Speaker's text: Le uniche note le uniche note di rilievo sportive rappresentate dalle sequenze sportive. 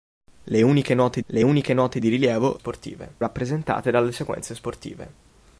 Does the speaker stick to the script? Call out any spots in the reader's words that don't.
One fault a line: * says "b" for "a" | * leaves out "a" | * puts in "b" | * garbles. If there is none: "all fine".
all fine